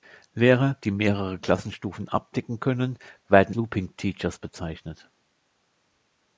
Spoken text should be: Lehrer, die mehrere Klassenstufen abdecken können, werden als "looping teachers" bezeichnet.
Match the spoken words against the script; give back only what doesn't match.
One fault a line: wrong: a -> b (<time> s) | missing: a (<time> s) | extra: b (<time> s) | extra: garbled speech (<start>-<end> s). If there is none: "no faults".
missing: als (3.5 s)